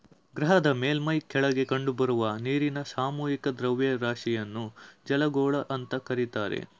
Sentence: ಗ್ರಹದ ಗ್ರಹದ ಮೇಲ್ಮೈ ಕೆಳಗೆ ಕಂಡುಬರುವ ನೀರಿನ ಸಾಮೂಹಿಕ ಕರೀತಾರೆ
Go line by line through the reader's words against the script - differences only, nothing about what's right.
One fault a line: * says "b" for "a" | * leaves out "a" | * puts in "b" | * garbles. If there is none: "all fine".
* leaves out "ಗ್ರಹದ"
* puts in "ದ್ರವ್ಯರಾಶಿಯನ್ನು ಜಲಗೋಳ ಅಂತ"